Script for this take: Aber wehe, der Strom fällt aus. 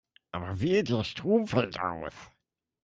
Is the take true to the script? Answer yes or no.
yes